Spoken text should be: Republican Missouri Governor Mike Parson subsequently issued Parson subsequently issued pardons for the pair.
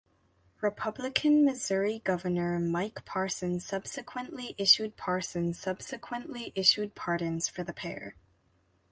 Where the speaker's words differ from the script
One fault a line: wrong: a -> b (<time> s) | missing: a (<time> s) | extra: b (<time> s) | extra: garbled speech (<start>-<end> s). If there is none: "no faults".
no faults